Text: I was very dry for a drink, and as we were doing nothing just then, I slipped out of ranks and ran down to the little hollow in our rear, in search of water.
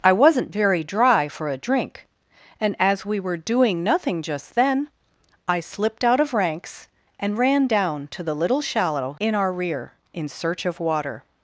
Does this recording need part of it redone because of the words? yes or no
yes